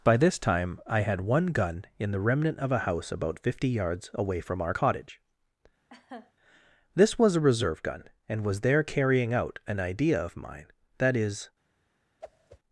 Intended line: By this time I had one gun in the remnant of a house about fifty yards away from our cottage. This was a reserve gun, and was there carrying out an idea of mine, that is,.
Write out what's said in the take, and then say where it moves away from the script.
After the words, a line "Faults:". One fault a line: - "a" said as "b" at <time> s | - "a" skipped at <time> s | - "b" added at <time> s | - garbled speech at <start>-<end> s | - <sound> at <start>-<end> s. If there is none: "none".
By this time I had one gun in the remnant of a house about fifty yards away from our cottage. This was a reserve gun, and was there carrying out an idea of mine, that is,.
Faults:
- laugh at 5.9-6.3 s
- whoosh at 12.2-12.6 s